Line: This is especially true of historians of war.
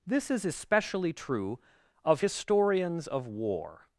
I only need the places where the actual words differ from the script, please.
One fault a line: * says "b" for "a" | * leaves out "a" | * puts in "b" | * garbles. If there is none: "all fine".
all fine